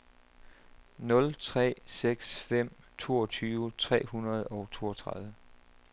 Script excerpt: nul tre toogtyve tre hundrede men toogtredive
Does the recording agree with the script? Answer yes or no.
no